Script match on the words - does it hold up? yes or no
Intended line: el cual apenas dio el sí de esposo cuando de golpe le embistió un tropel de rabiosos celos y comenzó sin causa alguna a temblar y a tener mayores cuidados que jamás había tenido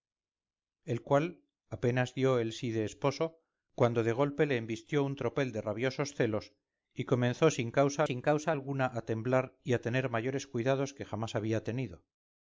no